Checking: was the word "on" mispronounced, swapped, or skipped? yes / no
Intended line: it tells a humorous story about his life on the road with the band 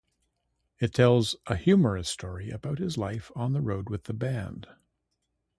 no